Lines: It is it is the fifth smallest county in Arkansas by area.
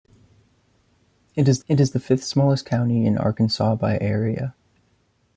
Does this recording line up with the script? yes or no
yes